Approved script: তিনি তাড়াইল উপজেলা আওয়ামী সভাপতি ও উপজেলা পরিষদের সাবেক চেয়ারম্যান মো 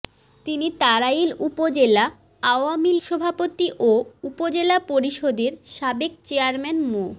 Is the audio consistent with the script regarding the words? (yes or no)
yes